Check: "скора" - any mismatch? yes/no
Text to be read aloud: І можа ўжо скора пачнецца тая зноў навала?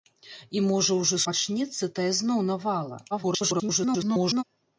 yes